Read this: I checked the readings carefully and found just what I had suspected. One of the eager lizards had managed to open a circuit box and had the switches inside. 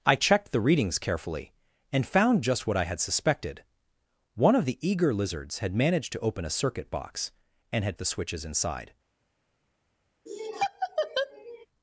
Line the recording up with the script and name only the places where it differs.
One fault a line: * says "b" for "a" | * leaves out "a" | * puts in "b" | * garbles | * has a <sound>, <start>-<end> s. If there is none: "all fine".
* has a laugh, 10.3-11.7 s